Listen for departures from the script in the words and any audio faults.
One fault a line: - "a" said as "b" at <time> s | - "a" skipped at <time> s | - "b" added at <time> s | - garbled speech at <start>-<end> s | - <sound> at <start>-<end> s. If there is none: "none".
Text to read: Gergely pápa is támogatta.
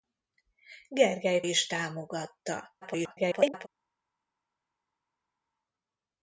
- "pápa" skipped at 1.4 s
- garbled speech at 2.8-3.7 s